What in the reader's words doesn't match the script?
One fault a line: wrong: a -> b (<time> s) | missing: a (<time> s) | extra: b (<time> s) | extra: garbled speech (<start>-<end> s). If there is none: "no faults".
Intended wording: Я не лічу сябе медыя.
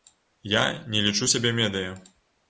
no faults